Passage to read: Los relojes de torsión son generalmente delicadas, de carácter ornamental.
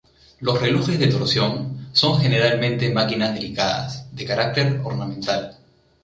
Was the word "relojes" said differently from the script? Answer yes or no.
no